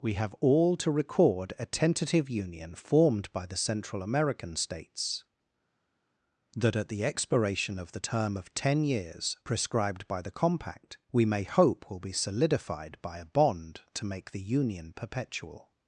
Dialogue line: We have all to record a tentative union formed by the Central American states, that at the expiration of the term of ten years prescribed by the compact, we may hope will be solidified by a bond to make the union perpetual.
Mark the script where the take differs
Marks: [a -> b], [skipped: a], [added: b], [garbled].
We have all to record a tentative union formed by the Central American states, that at the expiration of the term of ten years prescribed by the compact, we may hope will be solidified by a bond to make the union perpetual.